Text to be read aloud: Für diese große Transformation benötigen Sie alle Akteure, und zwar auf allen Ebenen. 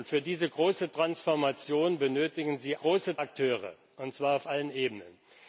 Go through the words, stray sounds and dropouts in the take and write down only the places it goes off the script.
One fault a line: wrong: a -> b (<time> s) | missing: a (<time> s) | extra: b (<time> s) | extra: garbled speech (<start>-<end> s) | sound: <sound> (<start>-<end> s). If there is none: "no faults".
wrong: alle -> große (2.8 s)